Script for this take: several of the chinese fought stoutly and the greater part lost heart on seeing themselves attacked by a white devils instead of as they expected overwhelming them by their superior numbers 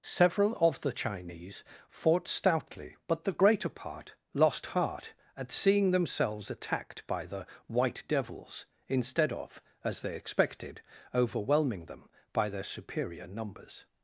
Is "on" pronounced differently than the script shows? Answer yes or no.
yes